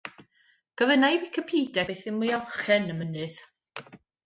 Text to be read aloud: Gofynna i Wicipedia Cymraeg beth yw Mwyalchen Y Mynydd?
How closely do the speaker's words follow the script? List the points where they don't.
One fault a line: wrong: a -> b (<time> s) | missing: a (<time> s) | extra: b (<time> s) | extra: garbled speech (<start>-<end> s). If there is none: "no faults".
missing: Cymraeg (1.8 s)